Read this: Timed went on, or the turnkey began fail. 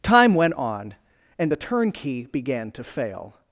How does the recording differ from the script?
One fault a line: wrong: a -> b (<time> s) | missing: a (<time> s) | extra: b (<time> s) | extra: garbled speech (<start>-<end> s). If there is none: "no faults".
wrong: Timed -> Time (0.0 s)
wrong: or -> and (1.4 s)
extra: to (2.7 s)